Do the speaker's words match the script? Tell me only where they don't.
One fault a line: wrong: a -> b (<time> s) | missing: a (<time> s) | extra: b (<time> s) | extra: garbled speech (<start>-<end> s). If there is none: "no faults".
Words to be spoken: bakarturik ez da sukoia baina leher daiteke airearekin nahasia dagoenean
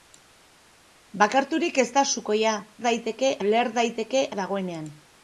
wrong: baina -> daiteke (2.9 s)
missing: airearekin nahasia (4.3 s)